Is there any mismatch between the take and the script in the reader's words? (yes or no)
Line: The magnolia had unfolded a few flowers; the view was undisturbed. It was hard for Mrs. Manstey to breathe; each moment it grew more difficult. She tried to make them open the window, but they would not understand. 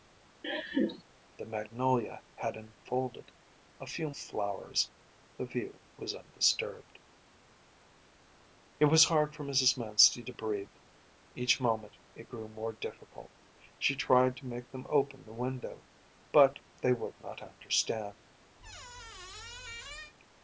no